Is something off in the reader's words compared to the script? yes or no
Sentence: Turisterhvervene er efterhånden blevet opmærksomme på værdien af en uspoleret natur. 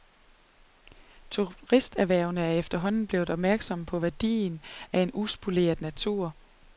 no